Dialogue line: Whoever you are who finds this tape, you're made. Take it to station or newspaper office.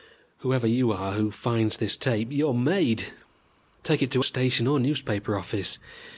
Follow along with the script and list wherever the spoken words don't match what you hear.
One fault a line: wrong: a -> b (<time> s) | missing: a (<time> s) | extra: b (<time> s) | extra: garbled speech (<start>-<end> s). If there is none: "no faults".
no faults